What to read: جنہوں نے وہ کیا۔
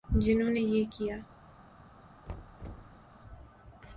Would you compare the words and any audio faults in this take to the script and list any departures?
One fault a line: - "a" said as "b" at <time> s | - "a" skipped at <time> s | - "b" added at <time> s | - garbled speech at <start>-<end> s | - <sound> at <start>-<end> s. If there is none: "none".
- "وہ" said as "یہ" at 0.6 s
- thud at 2.3-3.0 s